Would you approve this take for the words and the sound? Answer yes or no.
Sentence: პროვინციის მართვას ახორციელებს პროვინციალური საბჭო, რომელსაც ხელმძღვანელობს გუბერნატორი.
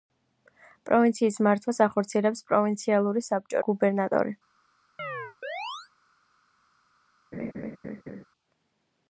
no